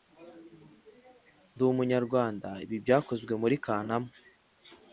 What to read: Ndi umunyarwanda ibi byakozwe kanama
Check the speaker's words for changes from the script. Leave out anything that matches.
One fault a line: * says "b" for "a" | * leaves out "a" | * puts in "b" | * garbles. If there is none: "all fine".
* puts in "muri"